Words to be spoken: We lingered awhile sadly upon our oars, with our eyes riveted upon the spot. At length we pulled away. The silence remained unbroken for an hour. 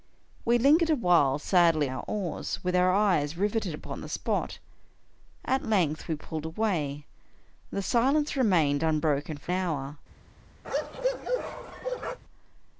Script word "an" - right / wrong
wrong